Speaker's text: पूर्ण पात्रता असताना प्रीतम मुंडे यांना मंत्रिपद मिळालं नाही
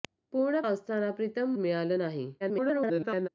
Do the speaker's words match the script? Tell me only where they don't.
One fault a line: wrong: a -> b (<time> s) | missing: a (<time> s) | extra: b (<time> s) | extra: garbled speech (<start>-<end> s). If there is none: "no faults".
missing: पात्रता (0.6 s)
missing: मुंडे यांना मंत्रिपद (1.5 s)
extra: garbled speech (2.4-3.3 s)